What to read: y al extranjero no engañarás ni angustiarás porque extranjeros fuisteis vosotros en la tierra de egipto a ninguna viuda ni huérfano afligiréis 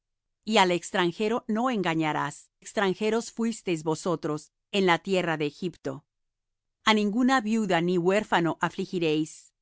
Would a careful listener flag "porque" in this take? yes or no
yes